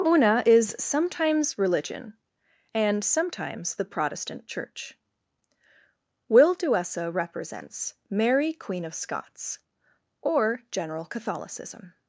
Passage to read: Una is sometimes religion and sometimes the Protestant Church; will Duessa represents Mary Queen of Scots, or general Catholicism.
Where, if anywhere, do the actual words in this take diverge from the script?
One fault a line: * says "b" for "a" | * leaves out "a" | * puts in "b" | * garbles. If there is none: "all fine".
all fine